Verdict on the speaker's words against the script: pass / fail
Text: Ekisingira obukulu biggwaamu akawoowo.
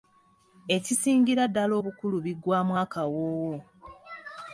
fail